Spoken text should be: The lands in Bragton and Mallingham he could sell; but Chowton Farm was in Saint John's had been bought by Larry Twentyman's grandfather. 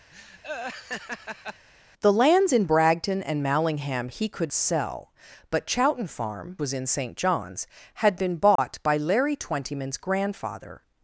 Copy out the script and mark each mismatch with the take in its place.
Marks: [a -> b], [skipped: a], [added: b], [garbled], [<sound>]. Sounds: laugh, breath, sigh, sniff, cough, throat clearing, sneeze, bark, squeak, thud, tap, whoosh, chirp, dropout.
[laugh] The lands in Bragton and Mallingham he could sell; but Chowton Farm was in Saint John's had been bought [dropout] by Larry Twentyman's grandfather.